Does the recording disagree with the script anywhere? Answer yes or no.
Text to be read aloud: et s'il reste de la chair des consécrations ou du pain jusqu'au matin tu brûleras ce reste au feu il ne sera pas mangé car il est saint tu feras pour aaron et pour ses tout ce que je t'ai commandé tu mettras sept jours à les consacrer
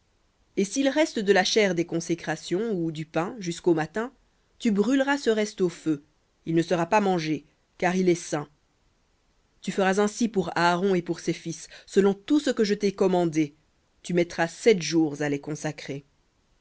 yes